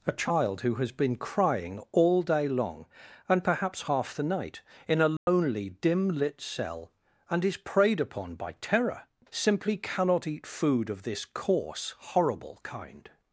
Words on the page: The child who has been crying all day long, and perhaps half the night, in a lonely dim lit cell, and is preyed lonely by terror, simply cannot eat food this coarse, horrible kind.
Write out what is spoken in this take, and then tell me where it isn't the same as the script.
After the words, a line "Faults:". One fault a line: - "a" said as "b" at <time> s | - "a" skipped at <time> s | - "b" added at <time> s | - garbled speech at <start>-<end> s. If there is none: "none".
A child who has been crying all day long, and perhaps half the night, in a lonely dim lit cell, and is preyed upon by terror, simply cannot eat food of this coarse, horrible kind.
Faults:
- "The" said as "A" at 0.1 s
- "lonely" said as "upon" at 8.0 s
- "of" added at 10.9 s